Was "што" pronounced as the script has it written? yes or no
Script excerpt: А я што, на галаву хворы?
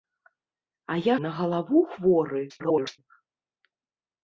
no